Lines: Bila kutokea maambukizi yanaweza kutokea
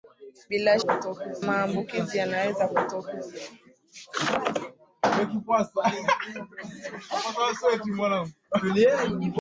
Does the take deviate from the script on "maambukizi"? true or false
false